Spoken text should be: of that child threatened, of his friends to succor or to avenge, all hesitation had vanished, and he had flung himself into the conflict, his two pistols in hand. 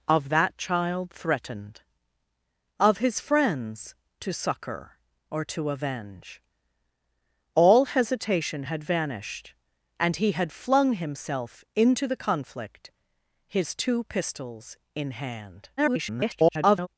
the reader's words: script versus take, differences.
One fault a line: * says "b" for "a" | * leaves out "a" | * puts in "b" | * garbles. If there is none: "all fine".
* garbles